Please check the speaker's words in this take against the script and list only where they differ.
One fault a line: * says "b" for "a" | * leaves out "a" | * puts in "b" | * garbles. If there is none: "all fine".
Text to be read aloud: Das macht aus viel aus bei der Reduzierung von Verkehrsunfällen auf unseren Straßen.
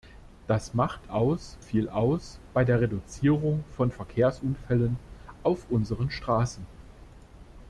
all fine